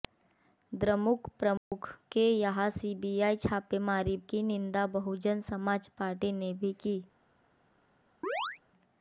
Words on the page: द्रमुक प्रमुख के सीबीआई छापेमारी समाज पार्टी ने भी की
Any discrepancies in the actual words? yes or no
yes